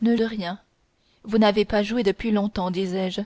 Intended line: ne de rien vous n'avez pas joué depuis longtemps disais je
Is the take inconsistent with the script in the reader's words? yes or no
no